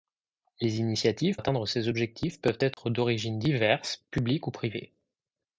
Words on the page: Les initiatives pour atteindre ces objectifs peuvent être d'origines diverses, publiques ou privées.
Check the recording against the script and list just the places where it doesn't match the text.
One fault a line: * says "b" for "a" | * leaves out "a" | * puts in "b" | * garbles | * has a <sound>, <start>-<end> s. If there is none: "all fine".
* leaves out "pour"
* has a dropout, 2.7-2.8 s